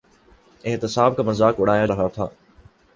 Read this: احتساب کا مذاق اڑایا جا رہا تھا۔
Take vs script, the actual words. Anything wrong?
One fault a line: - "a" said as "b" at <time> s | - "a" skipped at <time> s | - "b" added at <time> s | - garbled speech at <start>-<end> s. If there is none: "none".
- "جا" skipped at 1.9 s